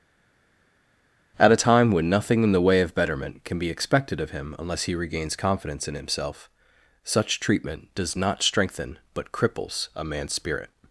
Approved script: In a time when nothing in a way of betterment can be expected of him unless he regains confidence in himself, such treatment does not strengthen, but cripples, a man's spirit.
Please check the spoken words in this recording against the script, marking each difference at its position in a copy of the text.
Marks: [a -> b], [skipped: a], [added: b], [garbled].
[In -> At] a time when nothing in [a -> the] way of betterment can be expected of him unless he regains confidence in himself, such treatment does not strengthen, but cripples, a man's spirit.